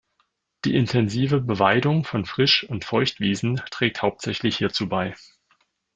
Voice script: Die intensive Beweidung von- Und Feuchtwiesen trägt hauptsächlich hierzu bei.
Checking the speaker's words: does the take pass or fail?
fail